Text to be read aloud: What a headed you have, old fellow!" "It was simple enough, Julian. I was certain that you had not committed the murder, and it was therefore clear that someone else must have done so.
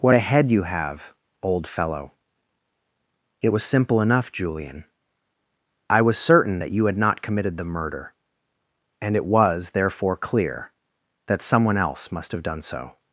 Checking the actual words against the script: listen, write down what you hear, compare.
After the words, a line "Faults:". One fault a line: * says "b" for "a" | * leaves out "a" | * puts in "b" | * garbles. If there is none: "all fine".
What a head you have, old fellow!" "It was simple enough, Julian. I was certain that you had not committed the murder, and it was therefore clear that someone else must have done so.
Faults:
* says "head" for "headed"